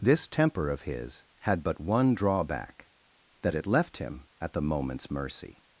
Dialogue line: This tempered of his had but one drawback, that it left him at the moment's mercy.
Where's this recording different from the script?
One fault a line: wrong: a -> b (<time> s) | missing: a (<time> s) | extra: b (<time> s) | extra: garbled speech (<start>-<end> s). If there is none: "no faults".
wrong: tempered -> temper (0.3 s)